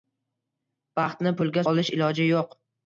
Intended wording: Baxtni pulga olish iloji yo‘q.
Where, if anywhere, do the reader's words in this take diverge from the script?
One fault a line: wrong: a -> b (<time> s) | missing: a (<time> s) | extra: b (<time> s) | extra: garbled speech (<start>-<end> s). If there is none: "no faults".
no faults